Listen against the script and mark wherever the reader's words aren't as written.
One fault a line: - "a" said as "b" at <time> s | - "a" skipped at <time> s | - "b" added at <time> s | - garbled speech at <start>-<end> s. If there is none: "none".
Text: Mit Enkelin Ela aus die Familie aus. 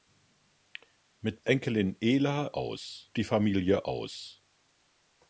none